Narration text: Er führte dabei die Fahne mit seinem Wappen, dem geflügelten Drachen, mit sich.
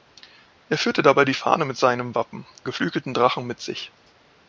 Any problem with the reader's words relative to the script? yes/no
yes